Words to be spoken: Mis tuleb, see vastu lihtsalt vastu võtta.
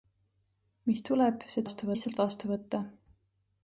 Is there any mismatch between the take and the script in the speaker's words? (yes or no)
no